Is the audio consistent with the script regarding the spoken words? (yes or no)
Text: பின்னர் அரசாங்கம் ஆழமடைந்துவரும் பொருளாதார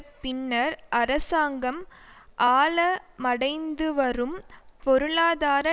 yes